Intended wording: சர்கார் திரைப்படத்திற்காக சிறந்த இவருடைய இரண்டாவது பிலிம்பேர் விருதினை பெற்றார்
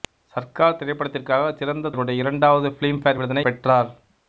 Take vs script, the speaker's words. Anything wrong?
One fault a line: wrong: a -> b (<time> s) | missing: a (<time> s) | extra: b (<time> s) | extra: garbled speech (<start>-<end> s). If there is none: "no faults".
no faults